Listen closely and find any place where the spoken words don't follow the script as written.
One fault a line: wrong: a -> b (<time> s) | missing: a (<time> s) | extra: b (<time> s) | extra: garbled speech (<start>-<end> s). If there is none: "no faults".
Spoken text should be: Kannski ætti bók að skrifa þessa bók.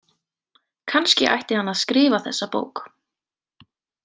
wrong: bók -> hann (1.6 s)